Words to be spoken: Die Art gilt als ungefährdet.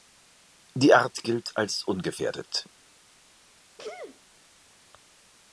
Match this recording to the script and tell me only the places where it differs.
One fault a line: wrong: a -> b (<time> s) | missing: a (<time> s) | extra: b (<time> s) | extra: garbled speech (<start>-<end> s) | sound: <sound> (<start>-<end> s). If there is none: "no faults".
sound: sneeze (3.8-4.2 s)